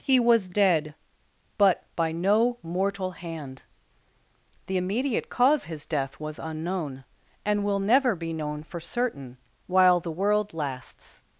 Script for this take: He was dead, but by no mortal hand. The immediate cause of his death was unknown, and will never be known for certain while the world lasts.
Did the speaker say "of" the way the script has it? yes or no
no